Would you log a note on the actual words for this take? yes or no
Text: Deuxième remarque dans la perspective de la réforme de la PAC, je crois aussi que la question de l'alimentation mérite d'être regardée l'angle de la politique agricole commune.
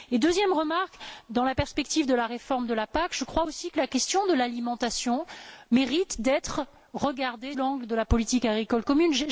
no